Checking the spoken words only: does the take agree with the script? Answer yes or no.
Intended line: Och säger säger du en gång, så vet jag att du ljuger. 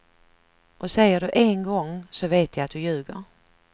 no